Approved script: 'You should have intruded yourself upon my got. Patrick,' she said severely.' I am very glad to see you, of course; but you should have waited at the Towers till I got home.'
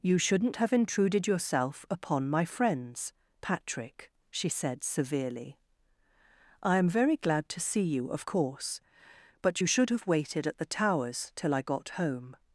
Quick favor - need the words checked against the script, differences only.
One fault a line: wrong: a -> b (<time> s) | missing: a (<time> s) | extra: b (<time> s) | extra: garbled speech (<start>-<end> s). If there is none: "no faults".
wrong: should -> shouldn't (0.2 s)
wrong: got -> friends (2.4 s)